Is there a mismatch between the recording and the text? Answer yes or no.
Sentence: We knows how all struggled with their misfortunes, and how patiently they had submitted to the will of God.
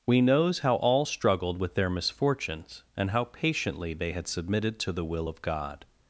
no